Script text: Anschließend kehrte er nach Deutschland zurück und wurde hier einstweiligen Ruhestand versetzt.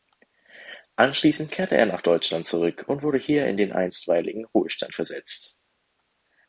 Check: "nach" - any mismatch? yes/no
no